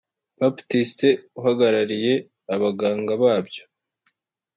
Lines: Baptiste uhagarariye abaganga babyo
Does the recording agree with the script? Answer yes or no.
yes